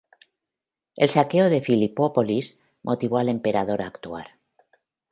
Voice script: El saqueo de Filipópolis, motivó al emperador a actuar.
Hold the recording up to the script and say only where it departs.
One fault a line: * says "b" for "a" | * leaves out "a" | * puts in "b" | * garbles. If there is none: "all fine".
all fine